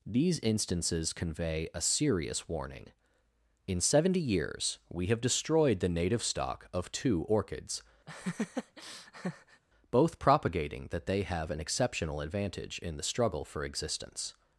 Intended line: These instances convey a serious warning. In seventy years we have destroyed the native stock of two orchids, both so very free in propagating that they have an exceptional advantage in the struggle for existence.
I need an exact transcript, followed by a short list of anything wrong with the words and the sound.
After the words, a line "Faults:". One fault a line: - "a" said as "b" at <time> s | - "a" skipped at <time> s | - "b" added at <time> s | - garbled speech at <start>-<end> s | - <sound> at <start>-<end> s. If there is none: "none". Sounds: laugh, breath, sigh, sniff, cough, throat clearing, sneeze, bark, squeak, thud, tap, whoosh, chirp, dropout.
These instances convey a serious warning. In seventy years we have destroyed the native stock of two orchids, both propagating that they have an exceptional advantage in the struggle for existence.
Faults:
- laugh at 8.1-9.6 s
- "so very free in" skipped at 10.2 s